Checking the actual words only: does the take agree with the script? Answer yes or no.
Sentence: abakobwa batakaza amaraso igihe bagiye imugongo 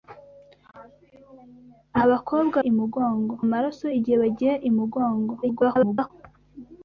no